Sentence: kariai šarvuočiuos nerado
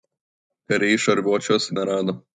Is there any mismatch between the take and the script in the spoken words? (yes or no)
no